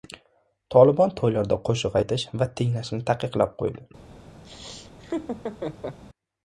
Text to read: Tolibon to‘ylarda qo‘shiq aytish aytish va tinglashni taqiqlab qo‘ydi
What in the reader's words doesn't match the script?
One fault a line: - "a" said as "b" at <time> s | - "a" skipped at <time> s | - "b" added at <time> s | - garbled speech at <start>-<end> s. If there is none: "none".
- "aytish" skipped at 2.3 s